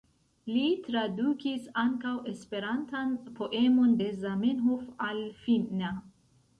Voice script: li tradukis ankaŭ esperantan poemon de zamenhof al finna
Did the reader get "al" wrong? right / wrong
right